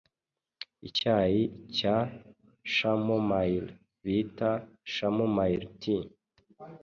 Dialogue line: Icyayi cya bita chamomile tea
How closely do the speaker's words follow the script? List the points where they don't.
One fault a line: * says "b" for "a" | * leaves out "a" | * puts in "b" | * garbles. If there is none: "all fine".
* puts in "chamomile"